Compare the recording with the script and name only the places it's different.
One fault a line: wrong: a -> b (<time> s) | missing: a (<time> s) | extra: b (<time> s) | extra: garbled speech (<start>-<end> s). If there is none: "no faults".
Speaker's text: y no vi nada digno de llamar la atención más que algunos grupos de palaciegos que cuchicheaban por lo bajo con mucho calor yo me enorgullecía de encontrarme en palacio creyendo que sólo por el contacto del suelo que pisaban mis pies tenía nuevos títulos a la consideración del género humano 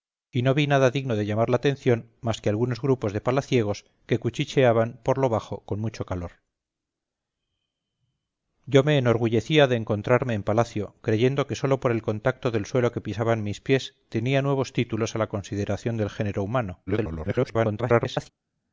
extra: garbled speech (16.9-18.3 s)